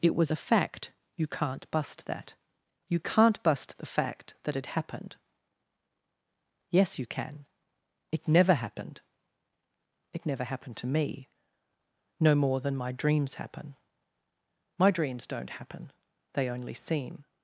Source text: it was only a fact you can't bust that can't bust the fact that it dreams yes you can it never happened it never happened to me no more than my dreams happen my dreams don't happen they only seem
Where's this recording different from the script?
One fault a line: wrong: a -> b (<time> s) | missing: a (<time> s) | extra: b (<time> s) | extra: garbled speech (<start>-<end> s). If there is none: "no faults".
missing: only (0.3 s)
extra: you (2.9 s)
wrong: dreams -> happened (4.7 s)